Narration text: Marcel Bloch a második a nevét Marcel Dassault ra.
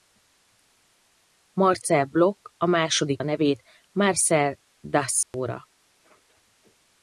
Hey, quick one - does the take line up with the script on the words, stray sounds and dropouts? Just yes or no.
no